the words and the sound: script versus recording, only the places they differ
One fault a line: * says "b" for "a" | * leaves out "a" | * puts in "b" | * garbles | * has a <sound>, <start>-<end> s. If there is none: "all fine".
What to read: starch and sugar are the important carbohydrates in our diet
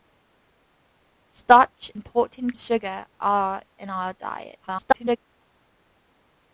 * says "important" for "and"
* leaves out "the important carbohydrates"
* garbles